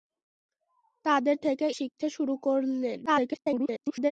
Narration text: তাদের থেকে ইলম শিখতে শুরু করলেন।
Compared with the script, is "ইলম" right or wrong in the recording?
wrong